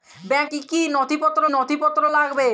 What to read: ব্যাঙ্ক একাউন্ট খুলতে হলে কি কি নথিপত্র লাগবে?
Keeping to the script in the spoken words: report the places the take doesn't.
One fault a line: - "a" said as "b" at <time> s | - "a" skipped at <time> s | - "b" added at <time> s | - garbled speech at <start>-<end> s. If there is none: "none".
- "একাউন্ট খুলতে হলে" said as "কি" at 0.5 s
- "কি" said as "নথিপত্র" at 1.0 s